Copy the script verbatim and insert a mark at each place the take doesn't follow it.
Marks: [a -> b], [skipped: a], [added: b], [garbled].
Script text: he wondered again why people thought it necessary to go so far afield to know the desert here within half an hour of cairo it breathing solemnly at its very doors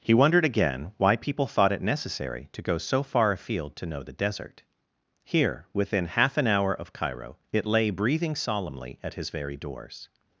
he wondered again why people thought it necessary to go so far afield to know the desert here within half an hour of cairo it [added: lay] breathing solemnly at [its -> his] very doors